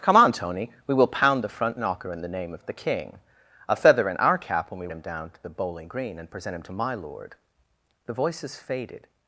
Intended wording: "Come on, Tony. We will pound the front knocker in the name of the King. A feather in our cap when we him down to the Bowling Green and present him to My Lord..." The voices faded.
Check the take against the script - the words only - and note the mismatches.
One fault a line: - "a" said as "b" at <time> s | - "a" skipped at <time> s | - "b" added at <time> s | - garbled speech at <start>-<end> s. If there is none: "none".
none